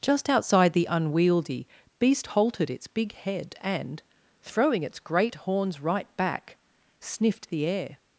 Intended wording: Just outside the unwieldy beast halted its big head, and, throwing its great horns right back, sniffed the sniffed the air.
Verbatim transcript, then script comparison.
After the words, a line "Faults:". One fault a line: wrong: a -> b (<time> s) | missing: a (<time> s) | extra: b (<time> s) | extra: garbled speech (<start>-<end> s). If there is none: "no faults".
Just outside the unwieldy beast halted its big head, and, throwing its great horns right back, sniffed the air.
Faults:
missing: sniffed the (7.7 s)